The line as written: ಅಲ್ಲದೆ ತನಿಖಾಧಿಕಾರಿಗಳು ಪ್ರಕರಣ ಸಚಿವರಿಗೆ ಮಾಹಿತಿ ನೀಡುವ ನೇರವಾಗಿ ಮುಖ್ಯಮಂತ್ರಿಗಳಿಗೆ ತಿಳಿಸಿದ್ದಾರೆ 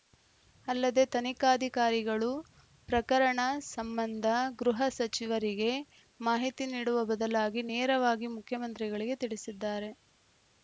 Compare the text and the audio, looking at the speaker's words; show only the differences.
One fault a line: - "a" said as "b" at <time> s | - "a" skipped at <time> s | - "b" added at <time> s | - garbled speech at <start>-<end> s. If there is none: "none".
- "ಸಂಬಂಧ ಗೃಹ" added at 3.7 s
- "ಬದಲಾಗಿ" added at 7.1 s